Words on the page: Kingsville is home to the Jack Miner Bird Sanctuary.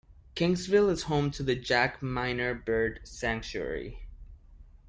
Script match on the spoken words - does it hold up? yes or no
yes